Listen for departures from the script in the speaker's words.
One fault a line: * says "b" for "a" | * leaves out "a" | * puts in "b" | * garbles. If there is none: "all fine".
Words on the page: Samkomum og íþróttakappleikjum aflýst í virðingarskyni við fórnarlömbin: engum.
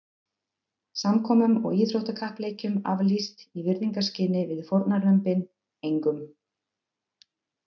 all fine